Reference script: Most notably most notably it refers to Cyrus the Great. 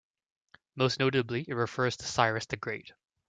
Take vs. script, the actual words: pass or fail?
fail